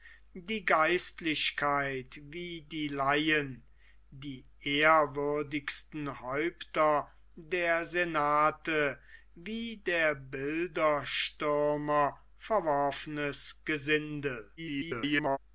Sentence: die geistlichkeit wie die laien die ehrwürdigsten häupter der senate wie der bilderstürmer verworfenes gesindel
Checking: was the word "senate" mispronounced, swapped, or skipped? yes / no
no